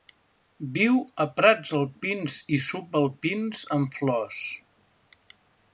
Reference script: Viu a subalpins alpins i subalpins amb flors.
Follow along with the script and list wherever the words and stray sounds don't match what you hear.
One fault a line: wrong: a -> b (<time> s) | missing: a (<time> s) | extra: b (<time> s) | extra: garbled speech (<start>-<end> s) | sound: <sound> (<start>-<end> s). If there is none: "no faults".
wrong: subalpins -> prats (1.4 s)